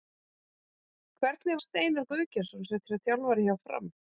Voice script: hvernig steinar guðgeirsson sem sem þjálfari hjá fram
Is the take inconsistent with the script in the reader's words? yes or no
no